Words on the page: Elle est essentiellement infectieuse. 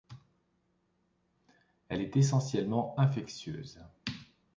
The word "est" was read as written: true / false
true